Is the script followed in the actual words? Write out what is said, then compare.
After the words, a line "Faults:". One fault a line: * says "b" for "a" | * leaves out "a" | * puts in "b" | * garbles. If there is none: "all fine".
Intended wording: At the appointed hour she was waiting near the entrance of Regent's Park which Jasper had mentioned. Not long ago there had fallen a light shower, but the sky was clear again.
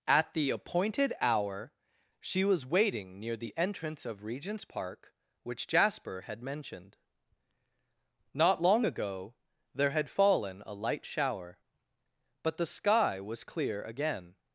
At the appointed hour she was waiting near the entrance of Regent's Park which Jasper had mentioned. Not long ago there had fallen a light shower, but the sky was clear again.
Faults:
all fine